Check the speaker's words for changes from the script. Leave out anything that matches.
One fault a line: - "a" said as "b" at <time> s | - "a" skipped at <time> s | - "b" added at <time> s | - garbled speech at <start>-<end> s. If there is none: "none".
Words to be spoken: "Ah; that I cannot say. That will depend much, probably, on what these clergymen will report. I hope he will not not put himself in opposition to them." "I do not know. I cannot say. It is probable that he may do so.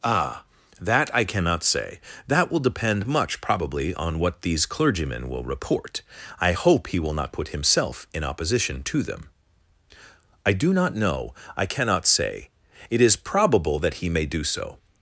- "not" skipped at 7.3 s